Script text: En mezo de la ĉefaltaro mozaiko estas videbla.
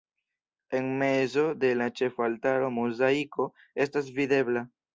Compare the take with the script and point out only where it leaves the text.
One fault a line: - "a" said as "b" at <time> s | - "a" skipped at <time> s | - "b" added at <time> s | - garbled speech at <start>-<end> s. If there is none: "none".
none